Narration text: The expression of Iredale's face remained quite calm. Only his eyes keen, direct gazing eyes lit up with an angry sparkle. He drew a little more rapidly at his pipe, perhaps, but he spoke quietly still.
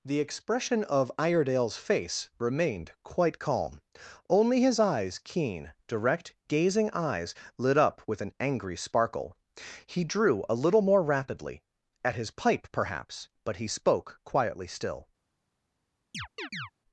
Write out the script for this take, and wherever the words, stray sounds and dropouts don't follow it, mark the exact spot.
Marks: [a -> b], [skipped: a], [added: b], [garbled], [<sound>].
The expression of Iredale's face remained quite calm. Only his eyes keen, direct gazing eyes lit up with an angry sparkle. He drew a little more rapidly at his pipe, perhaps, but he spoke quietly still. [chirp]